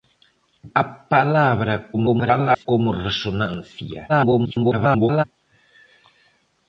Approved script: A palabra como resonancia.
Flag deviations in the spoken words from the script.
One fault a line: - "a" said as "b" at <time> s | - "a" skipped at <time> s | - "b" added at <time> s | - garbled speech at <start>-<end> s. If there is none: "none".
- garbled speech at 1.9-2.7 s
- garbled speech at 4.1-5.2 s